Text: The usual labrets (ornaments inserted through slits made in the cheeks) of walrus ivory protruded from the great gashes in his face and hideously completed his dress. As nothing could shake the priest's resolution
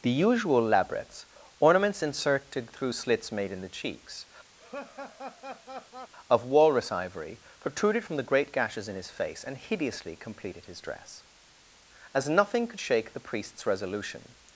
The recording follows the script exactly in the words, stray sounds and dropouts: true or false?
false